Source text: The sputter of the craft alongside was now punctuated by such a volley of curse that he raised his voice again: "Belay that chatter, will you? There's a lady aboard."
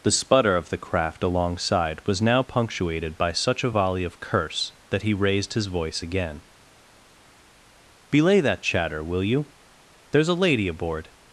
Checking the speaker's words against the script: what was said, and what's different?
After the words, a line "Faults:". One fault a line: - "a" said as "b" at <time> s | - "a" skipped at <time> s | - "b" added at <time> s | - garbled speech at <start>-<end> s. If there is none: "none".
The sputter of the craft alongside was now punctuated by such a volley of curse that he raised his voice again: "Belay that chatter, will you? There's a lady aboard."
Faults:
none